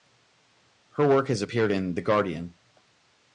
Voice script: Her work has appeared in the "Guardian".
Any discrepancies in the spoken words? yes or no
no